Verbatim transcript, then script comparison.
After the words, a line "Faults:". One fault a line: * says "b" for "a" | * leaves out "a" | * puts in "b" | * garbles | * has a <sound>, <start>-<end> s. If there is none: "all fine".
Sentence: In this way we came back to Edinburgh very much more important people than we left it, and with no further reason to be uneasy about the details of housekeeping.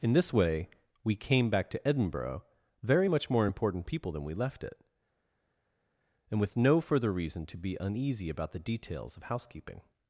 In this way we came back to Edinburgh very much more important people than we left it, and with no further reason to be uneasy about the details of housekeeping.
Faults:
all fine